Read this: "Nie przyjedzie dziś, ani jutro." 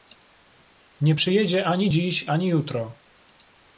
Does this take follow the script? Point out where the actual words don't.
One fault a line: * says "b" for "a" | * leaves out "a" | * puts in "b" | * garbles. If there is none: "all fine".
* puts in "ani"